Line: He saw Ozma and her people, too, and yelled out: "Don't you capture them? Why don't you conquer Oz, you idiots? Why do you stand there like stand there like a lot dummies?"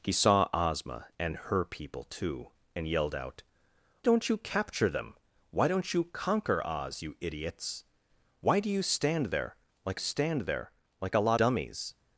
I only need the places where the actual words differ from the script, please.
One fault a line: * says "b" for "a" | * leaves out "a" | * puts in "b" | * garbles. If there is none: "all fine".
all fine